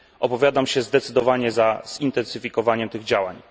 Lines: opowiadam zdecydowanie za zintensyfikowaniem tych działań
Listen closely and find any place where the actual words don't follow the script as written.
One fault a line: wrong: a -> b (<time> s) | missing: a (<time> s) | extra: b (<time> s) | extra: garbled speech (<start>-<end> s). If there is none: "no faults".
extra: się (0.7 s)